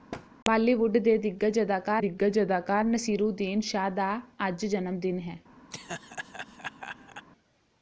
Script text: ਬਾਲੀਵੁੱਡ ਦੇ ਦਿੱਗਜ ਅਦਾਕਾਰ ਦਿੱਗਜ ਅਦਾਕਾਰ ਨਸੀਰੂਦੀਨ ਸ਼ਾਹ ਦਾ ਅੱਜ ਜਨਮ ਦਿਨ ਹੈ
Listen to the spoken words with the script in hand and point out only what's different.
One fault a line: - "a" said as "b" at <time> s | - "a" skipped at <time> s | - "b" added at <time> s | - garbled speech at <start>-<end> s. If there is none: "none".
none